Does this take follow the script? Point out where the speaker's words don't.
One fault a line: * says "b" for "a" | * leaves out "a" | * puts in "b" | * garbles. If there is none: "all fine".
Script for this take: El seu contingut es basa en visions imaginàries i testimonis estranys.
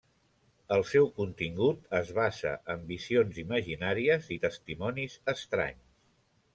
all fine